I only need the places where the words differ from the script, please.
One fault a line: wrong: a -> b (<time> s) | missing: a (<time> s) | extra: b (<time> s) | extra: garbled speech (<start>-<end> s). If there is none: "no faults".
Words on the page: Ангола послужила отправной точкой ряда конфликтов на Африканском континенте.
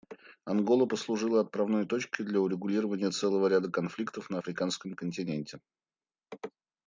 extra: для урегулирования целого (2.2 s)